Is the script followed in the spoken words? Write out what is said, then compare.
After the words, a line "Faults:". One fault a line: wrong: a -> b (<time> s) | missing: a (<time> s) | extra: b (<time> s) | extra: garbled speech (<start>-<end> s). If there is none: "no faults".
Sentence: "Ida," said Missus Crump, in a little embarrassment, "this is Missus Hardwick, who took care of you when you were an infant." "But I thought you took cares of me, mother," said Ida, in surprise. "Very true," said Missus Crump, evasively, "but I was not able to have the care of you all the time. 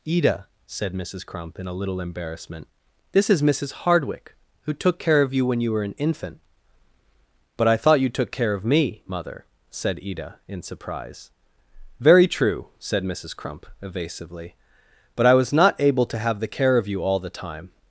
"Ida," said Missus Crump, in a little embarrassment, "this is Missus Hardwick, who took care of you when you were an infant." "But I thought you took care of me, mother," said Ida, in surprise. "Very true," said Missus Crump, evasively, "but I was not able to have the care of you all the time.
Faults:
wrong: cares -> care (8.3 s)